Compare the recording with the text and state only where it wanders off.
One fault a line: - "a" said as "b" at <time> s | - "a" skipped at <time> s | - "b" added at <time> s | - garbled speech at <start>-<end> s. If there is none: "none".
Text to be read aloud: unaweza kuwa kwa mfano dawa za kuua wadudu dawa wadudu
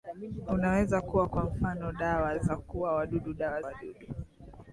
none